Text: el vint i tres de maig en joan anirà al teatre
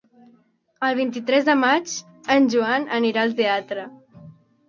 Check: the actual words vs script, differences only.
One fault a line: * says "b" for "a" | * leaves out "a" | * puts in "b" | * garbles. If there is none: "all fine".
all fine